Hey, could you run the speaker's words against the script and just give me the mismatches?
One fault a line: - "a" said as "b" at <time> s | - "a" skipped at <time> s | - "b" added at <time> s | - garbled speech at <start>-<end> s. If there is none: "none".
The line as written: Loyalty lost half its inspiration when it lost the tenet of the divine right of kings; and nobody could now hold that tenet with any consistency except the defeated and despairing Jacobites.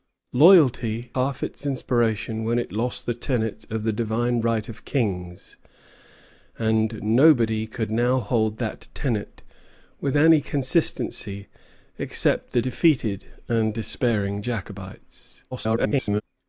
- "lost" skipped at 1.1 s
- garbled speech at 15.5-16.2 s